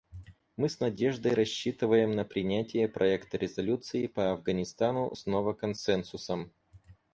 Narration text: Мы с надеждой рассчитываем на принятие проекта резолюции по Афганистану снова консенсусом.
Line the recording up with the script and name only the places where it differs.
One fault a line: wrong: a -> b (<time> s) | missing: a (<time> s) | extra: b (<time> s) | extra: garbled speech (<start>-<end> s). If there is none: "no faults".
no faults